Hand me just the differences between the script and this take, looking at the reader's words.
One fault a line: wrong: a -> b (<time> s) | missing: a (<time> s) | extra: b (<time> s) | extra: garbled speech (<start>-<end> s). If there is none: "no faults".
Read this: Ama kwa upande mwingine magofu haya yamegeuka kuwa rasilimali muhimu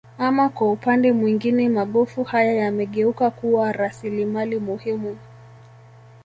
no faults